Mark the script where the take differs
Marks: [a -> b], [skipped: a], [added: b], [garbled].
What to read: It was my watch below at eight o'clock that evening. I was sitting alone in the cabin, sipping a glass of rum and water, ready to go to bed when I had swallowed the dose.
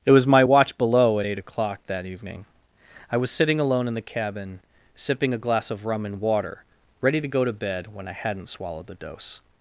It was my watch below at eight o'clock that evening. I was sitting alone in the cabin, sipping a glass of rum and water, ready to go to bed when I [had -> hadn't] swallowed the dose.